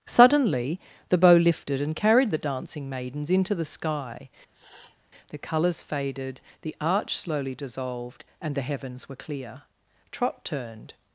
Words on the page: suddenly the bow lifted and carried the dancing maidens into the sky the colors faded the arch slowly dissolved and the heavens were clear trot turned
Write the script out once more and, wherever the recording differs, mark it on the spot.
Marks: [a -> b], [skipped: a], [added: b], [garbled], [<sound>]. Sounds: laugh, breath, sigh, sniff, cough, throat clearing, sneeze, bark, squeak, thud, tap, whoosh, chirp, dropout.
suddenly the bow lifted and carried the dancing maidens into the sky [sniff] the colors faded the arch slowly dissolved and the heavens were clear trot turned